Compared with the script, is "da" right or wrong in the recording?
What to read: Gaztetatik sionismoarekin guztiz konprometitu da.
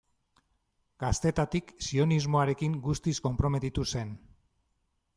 wrong